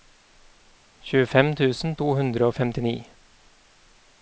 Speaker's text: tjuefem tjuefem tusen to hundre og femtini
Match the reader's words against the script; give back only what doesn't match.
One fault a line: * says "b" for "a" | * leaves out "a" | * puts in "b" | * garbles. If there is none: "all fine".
* leaves out "tjuefem"